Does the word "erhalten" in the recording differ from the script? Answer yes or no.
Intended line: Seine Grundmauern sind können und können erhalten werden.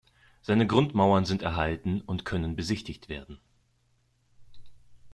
yes